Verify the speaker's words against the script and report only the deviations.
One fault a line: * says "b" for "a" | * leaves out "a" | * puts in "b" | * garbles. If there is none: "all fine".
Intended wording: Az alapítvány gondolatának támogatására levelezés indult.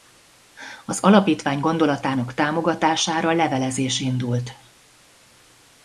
all fine